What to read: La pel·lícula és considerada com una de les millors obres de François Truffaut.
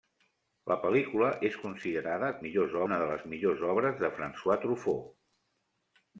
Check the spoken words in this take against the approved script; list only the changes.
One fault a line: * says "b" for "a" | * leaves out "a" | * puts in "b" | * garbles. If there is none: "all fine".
* says "millors" for "com"